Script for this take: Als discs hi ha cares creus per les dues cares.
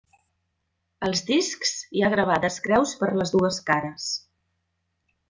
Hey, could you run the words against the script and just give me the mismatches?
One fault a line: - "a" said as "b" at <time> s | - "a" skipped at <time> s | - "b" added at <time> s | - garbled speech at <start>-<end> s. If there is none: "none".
- "cares" said as "gravades" at 2.1 s